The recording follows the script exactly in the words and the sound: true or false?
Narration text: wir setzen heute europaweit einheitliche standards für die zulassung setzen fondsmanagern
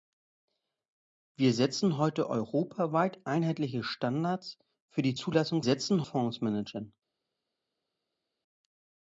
true